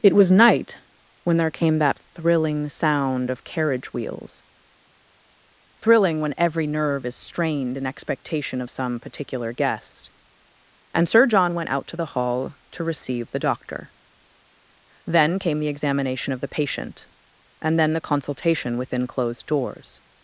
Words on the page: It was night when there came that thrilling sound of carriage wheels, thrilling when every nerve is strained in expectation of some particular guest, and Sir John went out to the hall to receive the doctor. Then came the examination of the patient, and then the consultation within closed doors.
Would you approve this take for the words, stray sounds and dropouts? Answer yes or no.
yes